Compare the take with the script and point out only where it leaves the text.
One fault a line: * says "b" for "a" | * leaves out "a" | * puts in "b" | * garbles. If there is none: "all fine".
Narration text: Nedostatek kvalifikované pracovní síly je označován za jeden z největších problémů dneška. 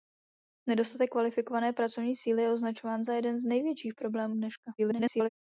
* garbles